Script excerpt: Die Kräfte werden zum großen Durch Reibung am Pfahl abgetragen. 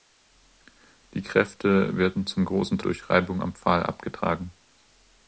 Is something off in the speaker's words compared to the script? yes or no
no